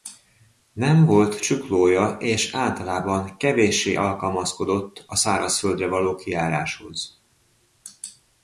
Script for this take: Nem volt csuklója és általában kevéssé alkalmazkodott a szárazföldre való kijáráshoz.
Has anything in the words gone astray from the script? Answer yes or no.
no